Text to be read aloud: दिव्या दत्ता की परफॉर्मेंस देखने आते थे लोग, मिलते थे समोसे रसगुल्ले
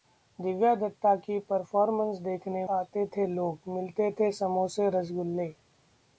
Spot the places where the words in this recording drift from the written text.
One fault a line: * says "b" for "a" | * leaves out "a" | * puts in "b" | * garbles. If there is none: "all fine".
all fine